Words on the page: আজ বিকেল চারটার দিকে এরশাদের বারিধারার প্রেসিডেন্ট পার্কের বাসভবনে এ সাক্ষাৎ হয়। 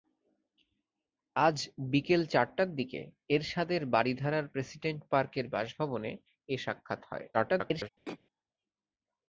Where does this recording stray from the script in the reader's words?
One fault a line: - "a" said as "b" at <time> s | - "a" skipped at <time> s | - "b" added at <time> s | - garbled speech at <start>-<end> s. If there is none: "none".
- garbled speech at 7.3-7.9 s